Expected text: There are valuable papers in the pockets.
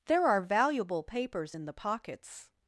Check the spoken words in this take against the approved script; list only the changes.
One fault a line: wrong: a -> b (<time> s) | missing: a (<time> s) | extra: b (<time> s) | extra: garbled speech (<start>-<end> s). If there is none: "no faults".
no faults